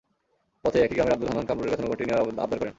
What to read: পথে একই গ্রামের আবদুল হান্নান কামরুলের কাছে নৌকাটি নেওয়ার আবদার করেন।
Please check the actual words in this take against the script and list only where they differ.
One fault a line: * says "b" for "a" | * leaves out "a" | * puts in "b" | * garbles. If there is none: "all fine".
all fine